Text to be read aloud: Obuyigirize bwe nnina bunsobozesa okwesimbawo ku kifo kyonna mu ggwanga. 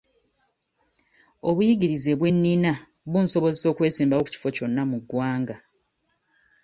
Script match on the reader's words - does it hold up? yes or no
yes